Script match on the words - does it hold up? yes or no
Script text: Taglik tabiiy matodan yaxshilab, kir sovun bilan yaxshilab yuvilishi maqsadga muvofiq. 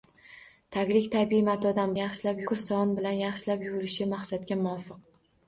yes